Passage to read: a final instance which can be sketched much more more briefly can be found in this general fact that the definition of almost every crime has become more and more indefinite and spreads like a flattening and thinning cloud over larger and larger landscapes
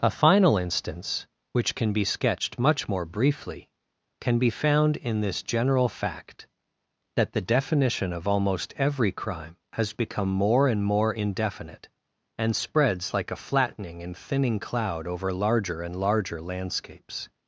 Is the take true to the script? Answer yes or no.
no